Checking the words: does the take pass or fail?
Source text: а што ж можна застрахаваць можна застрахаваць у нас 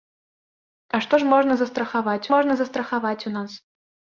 pass